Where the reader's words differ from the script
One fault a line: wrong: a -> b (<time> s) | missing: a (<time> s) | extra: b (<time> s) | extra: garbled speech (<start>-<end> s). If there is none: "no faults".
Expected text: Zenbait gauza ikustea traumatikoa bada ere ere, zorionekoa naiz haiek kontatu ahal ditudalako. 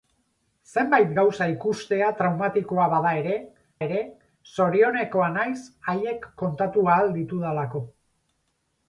no faults